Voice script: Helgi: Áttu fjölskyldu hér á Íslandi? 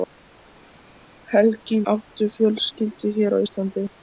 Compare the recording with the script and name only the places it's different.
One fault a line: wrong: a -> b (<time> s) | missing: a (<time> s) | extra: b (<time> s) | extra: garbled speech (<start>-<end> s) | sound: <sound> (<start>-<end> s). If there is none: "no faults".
no faults